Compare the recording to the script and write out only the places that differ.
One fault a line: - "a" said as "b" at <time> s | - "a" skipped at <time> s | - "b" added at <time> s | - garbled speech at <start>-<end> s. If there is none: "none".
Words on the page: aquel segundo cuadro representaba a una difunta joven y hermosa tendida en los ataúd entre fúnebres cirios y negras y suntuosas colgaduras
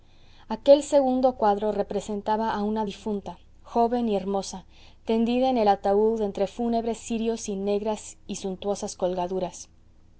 - "los" said as "el" at 5.6 s